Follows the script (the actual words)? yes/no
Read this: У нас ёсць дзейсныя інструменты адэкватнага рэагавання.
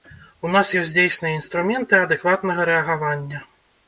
yes